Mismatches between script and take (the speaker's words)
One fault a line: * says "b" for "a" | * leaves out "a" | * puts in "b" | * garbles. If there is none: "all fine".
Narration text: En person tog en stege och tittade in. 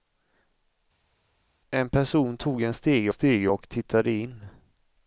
* puts in "stege"